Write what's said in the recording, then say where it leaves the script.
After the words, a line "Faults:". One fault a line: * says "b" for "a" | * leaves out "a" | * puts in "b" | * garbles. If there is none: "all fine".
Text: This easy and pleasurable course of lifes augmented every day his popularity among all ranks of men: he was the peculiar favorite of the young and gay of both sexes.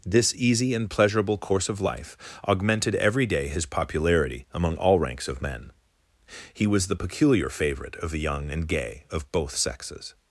This easy and pleasurable course of life augmented every day his popularity among all ranks of men: he was the peculiar favorite of the young and gay of both sexes.
Faults:
* says "life" for "lifes"